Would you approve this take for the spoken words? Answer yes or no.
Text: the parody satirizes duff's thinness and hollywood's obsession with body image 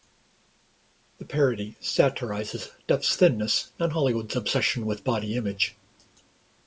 yes